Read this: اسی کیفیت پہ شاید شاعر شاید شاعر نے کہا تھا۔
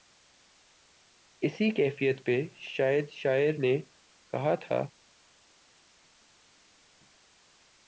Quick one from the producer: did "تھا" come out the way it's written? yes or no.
yes